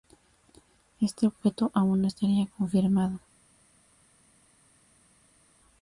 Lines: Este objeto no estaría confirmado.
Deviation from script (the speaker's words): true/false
true